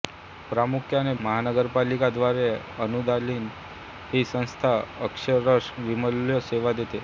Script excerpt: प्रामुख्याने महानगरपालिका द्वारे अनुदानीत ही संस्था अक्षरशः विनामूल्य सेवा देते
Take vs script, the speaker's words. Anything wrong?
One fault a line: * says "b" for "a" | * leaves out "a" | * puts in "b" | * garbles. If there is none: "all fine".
all fine